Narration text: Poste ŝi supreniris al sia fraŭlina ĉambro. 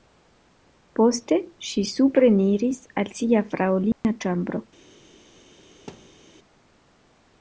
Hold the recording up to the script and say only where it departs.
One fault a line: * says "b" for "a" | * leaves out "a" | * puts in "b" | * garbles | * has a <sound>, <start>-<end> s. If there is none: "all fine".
* has a dropout, 3.9-4.0 s
* has a thud, 5.9-6.2 s